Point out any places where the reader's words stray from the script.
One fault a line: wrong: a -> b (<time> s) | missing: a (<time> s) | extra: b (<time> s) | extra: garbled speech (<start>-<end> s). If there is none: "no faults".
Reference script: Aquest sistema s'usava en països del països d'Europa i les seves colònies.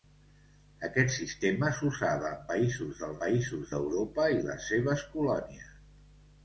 no faults